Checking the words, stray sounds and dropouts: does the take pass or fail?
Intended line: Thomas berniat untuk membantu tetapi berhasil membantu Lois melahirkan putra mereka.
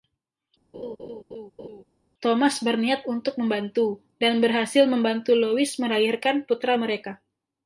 fail